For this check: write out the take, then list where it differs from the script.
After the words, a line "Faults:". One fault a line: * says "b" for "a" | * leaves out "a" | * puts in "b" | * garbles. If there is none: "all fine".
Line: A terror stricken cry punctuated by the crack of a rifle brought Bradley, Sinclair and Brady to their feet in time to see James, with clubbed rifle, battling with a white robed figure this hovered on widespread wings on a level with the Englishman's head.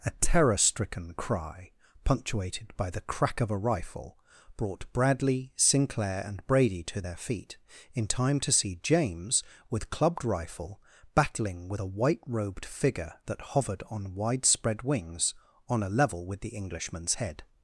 A terror stricken cry punctuated by the crack of a rifle brought Bradley, Sinclair and Brady to their feet in time to see James, with clubbed rifle, battling with a white robed figure that hovered on widespread wings on a level with the Englishman's head.
Faults:
* says "that" for "this"